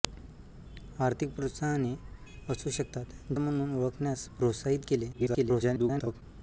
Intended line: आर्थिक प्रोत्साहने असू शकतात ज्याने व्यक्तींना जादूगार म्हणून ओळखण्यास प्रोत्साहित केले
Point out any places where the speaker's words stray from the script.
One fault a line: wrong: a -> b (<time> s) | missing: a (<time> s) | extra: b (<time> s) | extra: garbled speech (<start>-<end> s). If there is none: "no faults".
missing: ज्याने व्यक्तींना जादूगार (3.3 s)
extra: garbled speech (5.1-6.2 s)